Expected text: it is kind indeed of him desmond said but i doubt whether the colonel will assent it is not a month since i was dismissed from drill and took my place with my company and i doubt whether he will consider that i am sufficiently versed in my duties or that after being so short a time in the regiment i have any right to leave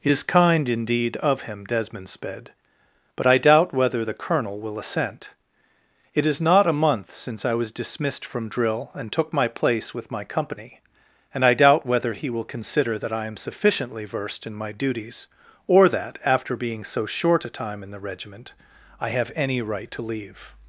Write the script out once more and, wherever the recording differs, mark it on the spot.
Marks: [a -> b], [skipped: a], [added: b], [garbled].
it is kind indeed of him desmond [said -> sped] but i doubt whether the colonel will assent it is not a month since i was dismissed from drill and took my place with my company and i doubt whether he will consider that i am sufficiently versed in my duties or that after being so short a time in the regiment i have any right to leave